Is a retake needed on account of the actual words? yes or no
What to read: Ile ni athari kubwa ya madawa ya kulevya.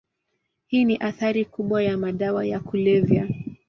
yes